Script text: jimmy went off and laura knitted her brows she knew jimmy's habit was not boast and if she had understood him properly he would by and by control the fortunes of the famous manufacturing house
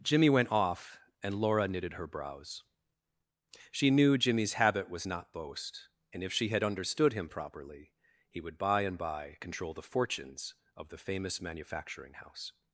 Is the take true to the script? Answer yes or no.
yes